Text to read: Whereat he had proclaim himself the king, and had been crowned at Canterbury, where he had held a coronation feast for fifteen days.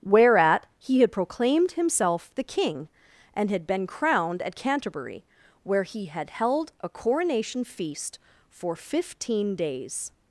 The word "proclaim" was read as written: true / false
false